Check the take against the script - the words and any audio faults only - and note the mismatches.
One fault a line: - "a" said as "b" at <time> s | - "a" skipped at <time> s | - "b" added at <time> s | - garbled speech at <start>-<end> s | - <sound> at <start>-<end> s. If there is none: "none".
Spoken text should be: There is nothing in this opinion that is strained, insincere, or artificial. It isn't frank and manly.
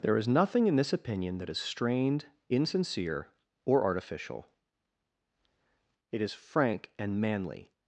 - "isn't" said as "is" at 6.2 s